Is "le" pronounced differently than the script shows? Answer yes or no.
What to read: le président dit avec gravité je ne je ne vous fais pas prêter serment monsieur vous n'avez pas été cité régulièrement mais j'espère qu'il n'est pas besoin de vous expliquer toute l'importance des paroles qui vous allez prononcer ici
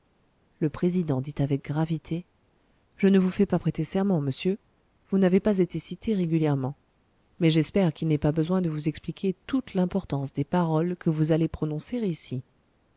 no